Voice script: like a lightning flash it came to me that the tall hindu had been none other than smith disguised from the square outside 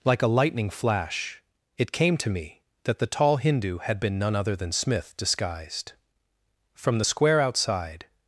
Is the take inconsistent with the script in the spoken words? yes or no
no